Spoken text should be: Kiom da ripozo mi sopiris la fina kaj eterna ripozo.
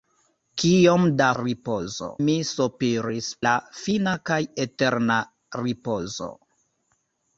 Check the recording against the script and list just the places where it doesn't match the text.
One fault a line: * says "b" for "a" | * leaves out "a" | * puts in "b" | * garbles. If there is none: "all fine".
all fine